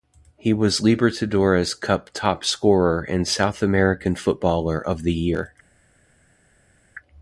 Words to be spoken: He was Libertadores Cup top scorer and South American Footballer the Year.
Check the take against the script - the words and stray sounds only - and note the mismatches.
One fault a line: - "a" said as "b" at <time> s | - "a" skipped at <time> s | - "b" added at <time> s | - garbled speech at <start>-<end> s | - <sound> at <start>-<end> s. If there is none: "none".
- "of" added at 4.8 s